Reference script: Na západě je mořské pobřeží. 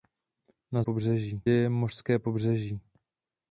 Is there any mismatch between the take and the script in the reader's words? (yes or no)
yes